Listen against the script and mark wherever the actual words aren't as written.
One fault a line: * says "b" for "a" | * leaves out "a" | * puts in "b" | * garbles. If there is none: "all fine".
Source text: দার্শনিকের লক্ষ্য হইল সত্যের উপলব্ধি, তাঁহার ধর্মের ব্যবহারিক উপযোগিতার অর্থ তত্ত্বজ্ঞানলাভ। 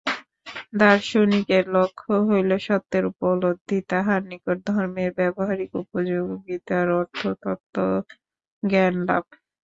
* puts in "নিকট"